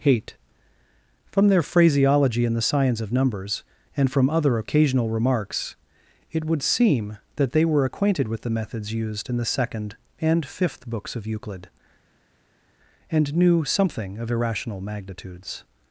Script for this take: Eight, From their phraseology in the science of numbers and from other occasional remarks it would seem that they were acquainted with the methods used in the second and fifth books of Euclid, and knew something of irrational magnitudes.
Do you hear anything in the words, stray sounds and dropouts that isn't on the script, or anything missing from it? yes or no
yes